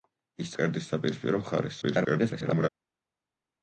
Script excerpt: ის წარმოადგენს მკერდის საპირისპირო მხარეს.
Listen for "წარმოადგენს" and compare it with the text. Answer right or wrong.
wrong